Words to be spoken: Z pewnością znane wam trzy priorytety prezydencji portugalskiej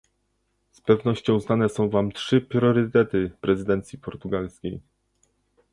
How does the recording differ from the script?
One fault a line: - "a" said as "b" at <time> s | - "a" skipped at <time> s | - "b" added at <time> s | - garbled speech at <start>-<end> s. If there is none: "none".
- "są" added at 1.7 s